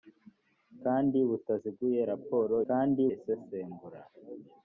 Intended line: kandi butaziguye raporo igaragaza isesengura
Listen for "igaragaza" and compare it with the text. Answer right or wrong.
wrong